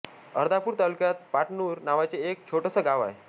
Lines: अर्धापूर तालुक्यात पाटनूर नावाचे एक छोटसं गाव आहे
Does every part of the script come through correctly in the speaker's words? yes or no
yes